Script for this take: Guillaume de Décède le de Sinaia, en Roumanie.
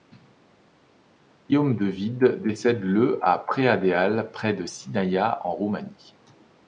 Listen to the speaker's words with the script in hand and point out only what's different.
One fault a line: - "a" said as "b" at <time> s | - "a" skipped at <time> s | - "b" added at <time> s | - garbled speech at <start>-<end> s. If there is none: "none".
- "Wied" added at 1.9 s
- "à Preadeal près" added at 3.2 s